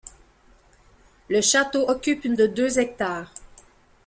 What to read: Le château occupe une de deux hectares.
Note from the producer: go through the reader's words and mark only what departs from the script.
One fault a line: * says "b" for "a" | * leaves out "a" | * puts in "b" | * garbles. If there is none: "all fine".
all fine